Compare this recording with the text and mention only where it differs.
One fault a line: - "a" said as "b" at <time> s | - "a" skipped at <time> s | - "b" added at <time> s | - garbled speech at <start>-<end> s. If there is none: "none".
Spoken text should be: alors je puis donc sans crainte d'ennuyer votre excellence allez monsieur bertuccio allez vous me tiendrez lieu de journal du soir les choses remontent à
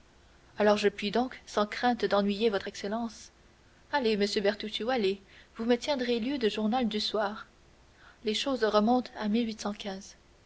none